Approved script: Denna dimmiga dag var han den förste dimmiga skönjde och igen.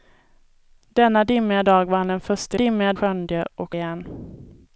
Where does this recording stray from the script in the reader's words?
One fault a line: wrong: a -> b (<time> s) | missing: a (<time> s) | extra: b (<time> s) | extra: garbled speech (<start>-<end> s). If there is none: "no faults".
no faults